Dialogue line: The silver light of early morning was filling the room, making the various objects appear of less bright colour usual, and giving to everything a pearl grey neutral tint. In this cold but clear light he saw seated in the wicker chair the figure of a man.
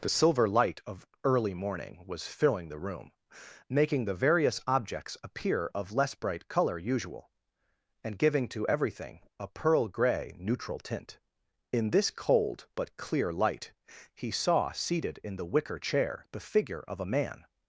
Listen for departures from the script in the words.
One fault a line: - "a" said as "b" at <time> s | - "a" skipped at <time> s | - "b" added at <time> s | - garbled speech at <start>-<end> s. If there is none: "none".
none